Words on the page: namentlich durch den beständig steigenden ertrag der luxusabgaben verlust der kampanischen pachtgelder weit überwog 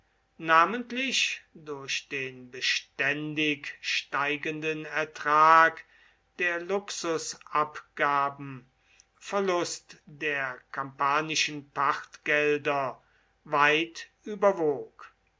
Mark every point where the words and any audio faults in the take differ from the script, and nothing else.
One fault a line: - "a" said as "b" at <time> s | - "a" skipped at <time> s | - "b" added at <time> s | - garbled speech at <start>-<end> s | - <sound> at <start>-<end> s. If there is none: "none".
none